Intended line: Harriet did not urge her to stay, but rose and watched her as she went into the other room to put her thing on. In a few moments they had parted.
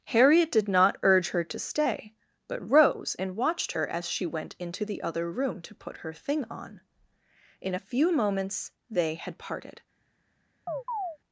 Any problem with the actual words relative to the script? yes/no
no